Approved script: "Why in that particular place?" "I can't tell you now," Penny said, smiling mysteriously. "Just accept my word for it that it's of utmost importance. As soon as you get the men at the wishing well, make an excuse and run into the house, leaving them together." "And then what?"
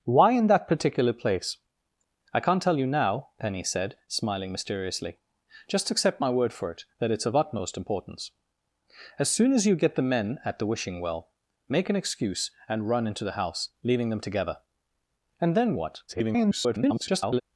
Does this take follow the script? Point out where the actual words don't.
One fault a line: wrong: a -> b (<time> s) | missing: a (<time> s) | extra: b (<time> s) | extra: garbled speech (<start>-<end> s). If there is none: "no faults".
extra: garbled speech (16.1-17.4 s)